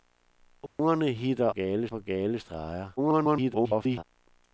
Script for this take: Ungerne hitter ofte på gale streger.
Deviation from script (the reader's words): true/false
true